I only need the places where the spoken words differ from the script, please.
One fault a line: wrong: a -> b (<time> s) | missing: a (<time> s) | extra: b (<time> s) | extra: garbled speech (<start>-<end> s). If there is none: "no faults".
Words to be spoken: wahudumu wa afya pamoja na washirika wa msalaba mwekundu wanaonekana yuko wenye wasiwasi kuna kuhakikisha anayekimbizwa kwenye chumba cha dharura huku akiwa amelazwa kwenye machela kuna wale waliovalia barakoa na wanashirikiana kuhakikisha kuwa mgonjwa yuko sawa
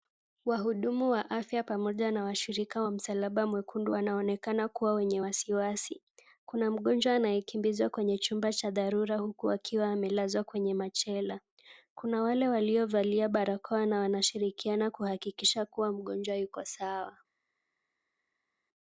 wrong: yuko -> kuwa (4.7 s)
wrong: kuhakikisha -> mgonjwa (6.7 s)